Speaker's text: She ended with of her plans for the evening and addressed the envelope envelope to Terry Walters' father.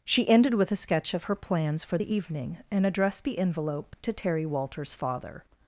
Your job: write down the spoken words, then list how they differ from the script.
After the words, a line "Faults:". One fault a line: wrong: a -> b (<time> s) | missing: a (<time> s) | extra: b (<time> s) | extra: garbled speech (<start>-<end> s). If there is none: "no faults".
She ended with a sketch of her plans for the evening and addressed the envelope to Terry Walters' father.
Faults:
extra: a sketch (0.7 s)
missing: envelope (4.0 s)